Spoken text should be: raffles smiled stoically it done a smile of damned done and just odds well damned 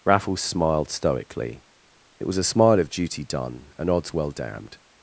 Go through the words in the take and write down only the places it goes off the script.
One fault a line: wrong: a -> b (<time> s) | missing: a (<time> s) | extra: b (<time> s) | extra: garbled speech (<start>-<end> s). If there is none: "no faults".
wrong: done -> was (2.3 s)
wrong: damned -> duty (2.9 s)
missing: just (3.9 s)